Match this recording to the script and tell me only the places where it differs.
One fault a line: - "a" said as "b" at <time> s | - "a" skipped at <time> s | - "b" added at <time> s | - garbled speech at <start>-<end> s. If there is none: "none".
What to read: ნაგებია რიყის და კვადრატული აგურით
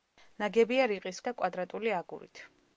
none